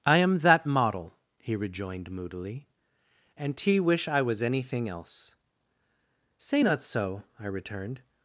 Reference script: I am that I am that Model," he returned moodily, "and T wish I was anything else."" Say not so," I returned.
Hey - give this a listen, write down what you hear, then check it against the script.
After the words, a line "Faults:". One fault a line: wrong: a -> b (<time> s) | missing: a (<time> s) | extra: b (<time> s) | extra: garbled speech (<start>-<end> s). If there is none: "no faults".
I am that Model," he rejoined moodily, "and T wish I was anything else."" Say not so," I returned.
Faults:
missing: I am that (0.7 s)
wrong: returned -> rejoined (1.5 s)